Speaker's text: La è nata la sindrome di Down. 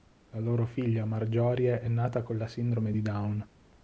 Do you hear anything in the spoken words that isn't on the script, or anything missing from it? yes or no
yes